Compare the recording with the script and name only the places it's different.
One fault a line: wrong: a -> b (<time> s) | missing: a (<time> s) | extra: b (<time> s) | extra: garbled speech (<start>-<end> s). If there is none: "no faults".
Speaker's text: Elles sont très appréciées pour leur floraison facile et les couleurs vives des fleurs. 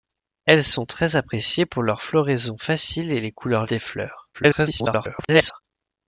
missing: vives (3.7 s)
extra: garbled speech (4.3-5.6 s)